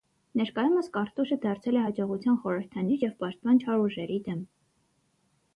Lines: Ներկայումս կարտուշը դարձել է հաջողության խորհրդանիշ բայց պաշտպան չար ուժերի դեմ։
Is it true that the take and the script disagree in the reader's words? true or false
true